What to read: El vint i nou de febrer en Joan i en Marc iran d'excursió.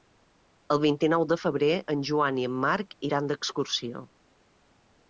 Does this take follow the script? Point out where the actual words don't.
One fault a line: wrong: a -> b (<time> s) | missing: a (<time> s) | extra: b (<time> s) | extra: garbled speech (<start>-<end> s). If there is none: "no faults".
no faults